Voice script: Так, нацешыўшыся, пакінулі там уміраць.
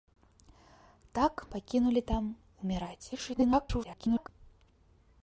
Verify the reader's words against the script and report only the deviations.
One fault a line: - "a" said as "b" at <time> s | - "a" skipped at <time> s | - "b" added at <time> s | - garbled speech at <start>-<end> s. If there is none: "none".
- "нацешыўшыся" skipped at 1.4 s
- garbled speech at 3.1-4.3 s